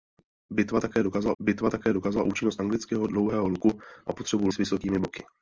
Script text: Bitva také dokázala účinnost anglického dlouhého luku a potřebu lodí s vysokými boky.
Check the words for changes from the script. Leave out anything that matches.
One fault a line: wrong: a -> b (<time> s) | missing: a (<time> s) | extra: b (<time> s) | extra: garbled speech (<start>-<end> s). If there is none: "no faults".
extra: bitva také dokázala (1.4 s)
missing: lodí (4.5 s)